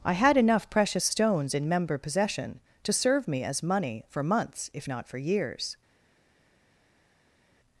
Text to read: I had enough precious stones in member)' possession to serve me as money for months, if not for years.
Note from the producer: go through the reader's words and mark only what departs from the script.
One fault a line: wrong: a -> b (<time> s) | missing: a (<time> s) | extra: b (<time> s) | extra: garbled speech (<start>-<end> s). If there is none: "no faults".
no faults